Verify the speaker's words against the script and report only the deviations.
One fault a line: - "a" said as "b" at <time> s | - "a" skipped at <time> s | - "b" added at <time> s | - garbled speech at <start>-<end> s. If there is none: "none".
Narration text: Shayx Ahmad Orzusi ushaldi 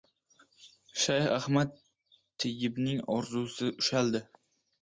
- "Tayyibning" added at 2.4 s